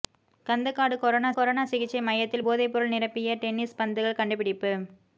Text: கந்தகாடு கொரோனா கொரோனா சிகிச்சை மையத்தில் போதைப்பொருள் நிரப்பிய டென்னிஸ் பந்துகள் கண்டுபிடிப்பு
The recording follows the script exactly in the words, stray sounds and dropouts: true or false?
true